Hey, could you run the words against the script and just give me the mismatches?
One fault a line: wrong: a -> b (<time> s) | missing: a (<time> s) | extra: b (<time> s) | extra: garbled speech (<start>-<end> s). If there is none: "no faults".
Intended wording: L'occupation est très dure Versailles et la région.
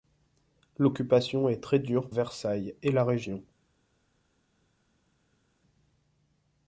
no faults